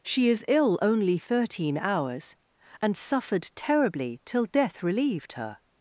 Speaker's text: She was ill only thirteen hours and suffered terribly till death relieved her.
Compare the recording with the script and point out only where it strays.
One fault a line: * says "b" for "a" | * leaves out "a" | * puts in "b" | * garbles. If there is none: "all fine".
* says "is" for "was"